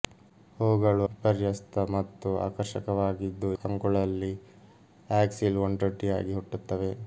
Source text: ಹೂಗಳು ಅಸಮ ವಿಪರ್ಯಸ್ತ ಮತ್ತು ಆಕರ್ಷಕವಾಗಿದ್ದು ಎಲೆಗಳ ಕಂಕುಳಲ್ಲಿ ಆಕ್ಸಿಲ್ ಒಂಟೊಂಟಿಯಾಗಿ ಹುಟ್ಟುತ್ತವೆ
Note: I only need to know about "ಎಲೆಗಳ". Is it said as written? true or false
false